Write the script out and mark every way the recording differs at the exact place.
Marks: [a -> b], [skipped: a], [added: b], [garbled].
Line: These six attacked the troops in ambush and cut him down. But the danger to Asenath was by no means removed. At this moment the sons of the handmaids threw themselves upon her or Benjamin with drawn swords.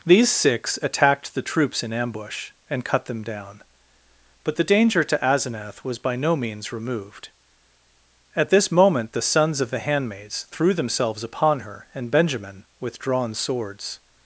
These six attacked the troops in ambush and cut [him -> them] down. But the danger to Asenath was by no means removed. At this moment the sons of the handmaids threw themselves upon her [or -> and] Benjamin with drawn swords.